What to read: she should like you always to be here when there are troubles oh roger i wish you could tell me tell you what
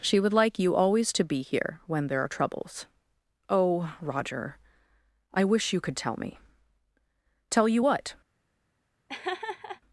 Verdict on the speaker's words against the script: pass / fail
fail